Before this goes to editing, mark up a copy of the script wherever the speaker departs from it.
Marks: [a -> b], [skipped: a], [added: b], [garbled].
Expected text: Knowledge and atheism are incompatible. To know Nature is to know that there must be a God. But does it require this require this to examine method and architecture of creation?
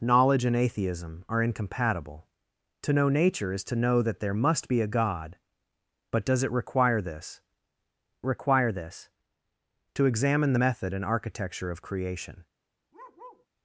Knowledge and atheism are incompatible. To know Nature is to know that there must be a God. But does it require this require this to examine method and architecture of creation?